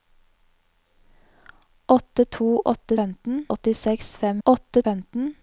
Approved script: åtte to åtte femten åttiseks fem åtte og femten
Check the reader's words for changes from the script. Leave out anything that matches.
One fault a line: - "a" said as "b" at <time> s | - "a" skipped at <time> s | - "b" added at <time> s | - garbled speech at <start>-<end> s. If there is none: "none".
none